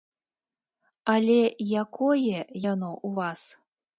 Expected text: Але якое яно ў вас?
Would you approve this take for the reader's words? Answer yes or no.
yes